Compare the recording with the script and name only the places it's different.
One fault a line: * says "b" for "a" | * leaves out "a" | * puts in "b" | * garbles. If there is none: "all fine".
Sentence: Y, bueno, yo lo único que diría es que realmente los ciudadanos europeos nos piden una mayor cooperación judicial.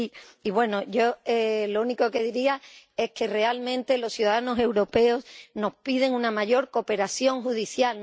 all fine